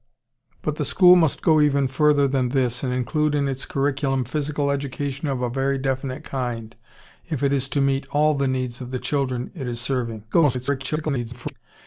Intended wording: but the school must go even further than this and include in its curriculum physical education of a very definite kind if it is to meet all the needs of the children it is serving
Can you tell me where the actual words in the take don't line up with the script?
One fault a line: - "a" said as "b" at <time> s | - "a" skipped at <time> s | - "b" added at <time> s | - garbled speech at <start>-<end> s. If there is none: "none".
- garbled speech at 10.3-11.5 s